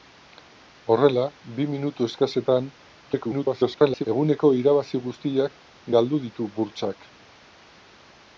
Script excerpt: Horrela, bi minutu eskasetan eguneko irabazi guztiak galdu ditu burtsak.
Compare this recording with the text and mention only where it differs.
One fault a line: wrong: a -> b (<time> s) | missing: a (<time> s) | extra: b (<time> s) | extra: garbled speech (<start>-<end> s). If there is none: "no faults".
extra: garbled speech (3.1-4.1 s)